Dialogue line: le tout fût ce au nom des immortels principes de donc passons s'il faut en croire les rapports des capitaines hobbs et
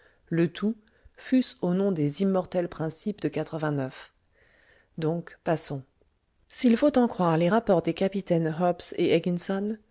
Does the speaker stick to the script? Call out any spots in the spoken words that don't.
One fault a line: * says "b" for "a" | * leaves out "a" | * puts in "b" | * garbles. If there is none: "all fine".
all fine